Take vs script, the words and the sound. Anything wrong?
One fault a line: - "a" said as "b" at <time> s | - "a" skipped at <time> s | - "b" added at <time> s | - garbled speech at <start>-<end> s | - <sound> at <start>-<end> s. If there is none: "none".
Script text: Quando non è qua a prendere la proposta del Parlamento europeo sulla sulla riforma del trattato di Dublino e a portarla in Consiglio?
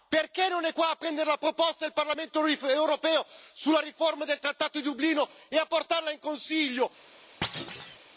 - "Quando" said as "Perché" at 0.1 s
- "sulla" skipped at 3.8 s
- thud at 7.4-8.0 s